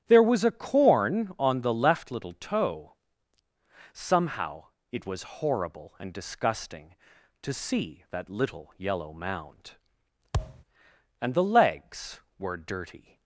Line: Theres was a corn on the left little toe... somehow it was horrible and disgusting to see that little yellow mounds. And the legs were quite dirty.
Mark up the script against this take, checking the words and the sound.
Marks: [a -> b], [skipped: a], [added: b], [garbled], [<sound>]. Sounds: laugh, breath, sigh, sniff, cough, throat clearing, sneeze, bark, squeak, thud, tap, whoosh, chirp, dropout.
[Theres -> There] was a corn on the left little toe... somehow it was horrible and disgusting to see that little yellow [mounds. -> mound] [thud] And the legs were [skipped: quite] dirty.